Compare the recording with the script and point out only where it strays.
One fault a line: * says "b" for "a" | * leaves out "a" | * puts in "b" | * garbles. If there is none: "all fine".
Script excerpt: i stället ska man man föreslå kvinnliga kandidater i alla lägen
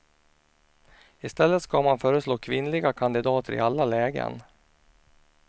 * leaves out "man"